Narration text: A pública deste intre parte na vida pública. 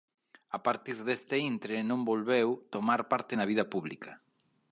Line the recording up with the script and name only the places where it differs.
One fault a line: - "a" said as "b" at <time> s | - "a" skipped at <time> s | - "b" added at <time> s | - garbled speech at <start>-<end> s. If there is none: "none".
- "pública" said as "partir" at 0.7 s
- "non volveu tomar" added at 1.9 s